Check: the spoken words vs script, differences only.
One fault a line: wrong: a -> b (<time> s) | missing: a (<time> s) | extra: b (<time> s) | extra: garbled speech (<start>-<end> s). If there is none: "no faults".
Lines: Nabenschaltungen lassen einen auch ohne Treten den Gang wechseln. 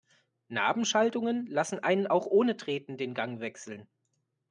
no faults